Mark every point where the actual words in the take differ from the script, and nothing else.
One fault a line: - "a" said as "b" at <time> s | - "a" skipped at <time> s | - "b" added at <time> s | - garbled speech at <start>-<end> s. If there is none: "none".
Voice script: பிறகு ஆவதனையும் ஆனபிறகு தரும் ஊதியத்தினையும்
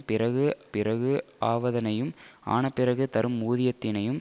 - "பிறகு" added at 0.7 s